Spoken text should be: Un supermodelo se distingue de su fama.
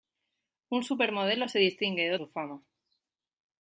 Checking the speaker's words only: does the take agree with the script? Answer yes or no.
yes